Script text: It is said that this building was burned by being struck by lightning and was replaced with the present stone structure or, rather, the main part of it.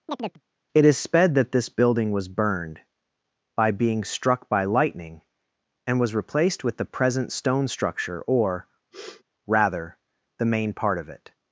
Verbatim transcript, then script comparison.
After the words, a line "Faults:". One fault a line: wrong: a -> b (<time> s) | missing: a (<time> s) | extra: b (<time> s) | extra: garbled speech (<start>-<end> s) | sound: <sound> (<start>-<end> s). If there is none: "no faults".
It is sped that this building was burned by being struck by lightning and was replaced with the present stone structure or, rather, the main part of it.
Faults:
sound: chirp (0.1-0.4 s)
wrong: said -> sped (1.0 s)
sound: sniff (8.9-9.2 s)